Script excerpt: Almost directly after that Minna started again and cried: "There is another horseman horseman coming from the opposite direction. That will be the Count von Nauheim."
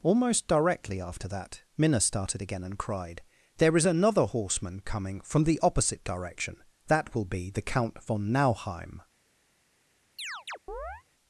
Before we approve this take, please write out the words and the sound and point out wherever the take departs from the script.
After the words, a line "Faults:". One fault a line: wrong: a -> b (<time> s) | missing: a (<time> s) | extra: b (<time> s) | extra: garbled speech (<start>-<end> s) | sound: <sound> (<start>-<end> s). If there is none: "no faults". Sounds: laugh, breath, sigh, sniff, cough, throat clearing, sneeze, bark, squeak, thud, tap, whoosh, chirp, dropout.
Almost directly after that Minna started again and cried: "There is another horseman coming from the opposite direction. That will be the Count von Nauheim."
Faults:
missing: horseman (4.8 s)
sound: chirp (10.2-11.0 s)